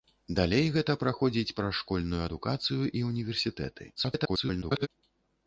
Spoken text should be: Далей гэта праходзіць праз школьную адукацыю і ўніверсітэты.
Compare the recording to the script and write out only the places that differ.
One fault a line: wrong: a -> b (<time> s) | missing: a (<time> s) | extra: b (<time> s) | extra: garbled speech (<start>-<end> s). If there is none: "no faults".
extra: garbled speech (4.0-4.9 s)